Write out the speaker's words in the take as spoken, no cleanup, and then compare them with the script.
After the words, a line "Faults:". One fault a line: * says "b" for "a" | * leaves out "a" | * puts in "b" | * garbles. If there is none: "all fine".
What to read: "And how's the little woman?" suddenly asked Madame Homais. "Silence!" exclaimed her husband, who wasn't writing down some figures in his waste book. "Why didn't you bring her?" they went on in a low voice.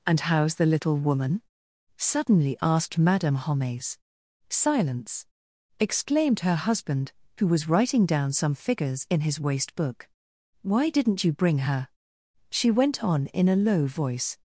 "And how's the little woman?" suddenly asked Madame Homais. "Silence!" exclaimed her husband, who was writing down some figures in his waste book. "Why didn't you bring her?" she went on in a low voice.
Faults:
* says "was" for "wasn't"
* says "she" for "they"